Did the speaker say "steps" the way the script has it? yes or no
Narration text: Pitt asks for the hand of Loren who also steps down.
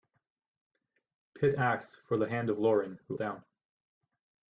no